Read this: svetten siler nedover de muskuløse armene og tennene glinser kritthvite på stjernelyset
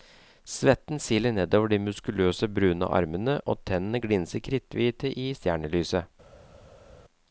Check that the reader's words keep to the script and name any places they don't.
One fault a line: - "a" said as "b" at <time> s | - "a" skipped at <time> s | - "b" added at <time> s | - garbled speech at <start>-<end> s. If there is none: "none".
- "brune" added at 2.5 s
- "på" said as "i" at 5.1 s